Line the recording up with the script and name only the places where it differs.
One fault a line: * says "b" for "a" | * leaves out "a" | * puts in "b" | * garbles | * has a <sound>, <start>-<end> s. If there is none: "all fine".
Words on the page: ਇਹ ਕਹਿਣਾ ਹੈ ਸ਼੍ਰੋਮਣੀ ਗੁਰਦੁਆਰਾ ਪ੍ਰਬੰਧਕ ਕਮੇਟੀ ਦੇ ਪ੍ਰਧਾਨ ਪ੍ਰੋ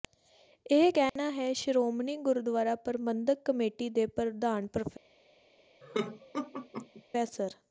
* has a dropout, 1.1-1.2 s
* has a laugh, 5.8-7.0 s